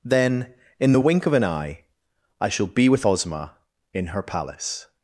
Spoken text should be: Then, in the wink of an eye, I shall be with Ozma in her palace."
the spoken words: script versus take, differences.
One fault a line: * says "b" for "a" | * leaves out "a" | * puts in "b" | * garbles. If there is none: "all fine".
all fine